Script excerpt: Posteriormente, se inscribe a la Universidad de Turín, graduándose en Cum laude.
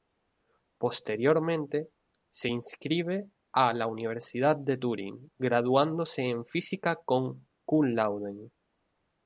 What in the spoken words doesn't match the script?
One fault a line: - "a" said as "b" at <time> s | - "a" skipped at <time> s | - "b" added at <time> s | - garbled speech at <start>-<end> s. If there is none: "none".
- "Física con" added at 6.5 s